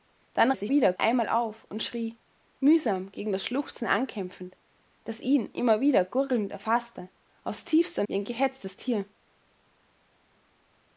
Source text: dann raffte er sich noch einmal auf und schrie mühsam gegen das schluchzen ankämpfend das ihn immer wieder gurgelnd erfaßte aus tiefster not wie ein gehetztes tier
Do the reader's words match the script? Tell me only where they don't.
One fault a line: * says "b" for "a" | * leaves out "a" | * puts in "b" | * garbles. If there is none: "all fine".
* leaves out "raffte"
* says "wieder" for "noch"
* leaves out "not"